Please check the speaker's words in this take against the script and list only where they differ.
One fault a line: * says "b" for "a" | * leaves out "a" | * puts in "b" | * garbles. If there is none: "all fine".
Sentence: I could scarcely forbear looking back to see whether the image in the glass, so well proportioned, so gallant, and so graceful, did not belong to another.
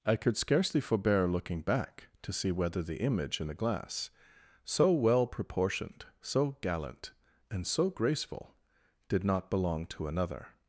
all fine